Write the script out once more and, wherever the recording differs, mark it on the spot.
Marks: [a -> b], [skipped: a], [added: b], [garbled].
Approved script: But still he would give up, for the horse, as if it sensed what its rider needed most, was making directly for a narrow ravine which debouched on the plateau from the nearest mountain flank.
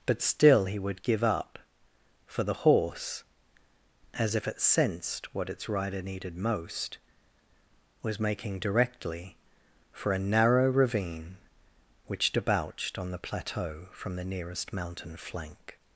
But still he would give up, for the horse, as if it sensed what its rider needed most, was making directly for a narrow ravine which debouched on the plateau from the nearest mountain flank.